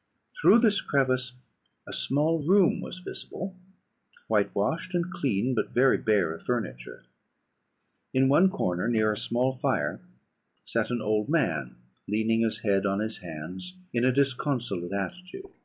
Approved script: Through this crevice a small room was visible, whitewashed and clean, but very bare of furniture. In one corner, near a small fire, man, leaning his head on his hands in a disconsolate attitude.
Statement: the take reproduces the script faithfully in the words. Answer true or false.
false